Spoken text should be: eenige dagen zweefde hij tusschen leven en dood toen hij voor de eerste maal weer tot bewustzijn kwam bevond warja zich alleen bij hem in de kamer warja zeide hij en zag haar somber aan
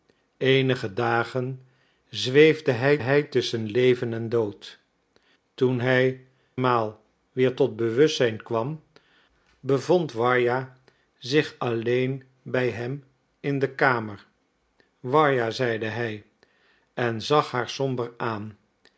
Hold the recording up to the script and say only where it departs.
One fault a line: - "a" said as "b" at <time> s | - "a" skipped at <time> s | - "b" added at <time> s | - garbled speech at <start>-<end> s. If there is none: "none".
- "hij" added at 3.0 s
- "voor de eerste" skipped at 6.3 s